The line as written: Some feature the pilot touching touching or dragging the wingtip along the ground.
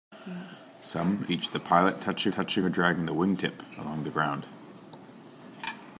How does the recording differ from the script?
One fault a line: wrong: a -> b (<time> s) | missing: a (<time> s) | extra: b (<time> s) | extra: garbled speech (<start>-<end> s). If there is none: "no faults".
no faults